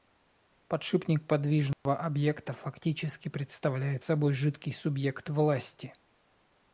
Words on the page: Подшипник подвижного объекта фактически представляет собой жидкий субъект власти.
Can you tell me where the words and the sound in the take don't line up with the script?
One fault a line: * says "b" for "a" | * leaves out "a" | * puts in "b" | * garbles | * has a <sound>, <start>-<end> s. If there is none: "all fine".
* has a dropout, 1.7-1.9 s